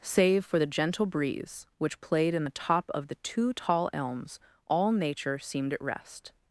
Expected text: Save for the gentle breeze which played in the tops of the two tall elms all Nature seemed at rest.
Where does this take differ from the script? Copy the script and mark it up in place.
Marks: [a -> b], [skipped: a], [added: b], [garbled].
Save for the gentle breeze which played in the [tops -> top] of the two tall elms all Nature seemed at rest.